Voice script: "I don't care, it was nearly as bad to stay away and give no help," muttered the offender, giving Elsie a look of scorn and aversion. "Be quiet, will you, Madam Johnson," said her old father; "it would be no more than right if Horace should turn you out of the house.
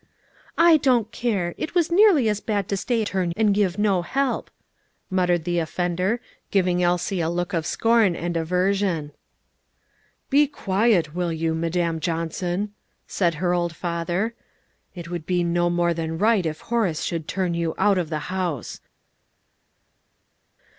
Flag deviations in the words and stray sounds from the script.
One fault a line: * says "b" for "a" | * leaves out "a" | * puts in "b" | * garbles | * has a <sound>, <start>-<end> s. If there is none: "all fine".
* says "turn" for "away"